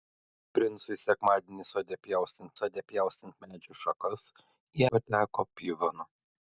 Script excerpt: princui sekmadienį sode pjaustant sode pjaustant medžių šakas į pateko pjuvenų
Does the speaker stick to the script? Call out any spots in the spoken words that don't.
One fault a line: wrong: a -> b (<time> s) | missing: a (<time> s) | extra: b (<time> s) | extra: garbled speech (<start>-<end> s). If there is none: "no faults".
no faults